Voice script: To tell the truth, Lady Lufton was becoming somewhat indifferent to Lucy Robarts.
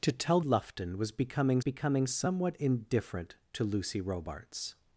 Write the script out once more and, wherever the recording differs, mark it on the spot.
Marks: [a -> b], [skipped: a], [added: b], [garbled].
To tell [skipped: the truth, Lady] Lufton was becoming [added: becoming] somewhat indifferent to Lucy Robarts.